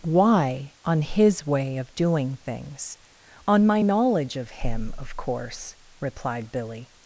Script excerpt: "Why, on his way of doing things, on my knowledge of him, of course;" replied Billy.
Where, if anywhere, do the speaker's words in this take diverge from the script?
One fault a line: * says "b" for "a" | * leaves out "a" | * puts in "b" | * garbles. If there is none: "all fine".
all fine